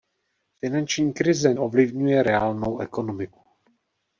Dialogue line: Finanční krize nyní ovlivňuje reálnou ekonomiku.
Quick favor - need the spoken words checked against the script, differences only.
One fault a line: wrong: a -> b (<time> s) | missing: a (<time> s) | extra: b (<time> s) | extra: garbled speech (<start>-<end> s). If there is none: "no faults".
missing: nyní (1.5 s)